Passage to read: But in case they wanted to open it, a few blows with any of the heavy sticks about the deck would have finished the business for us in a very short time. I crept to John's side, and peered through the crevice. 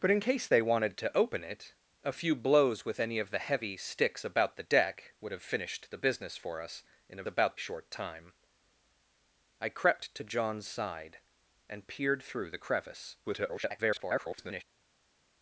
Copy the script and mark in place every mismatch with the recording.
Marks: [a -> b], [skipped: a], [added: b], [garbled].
But in case they wanted to open it, a few blows with any of the heavy sticks about the deck would have finished the business for us in a [very -> about] short time. I crept to John's side, and peered through the crevice. [garbled]